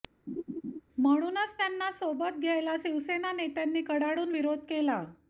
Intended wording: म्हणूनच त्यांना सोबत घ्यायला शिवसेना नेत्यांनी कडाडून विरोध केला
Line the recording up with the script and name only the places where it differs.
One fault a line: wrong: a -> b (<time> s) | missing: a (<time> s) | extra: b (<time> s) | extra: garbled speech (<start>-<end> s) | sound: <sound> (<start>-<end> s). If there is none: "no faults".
sound: laugh (0.3-0.8 s)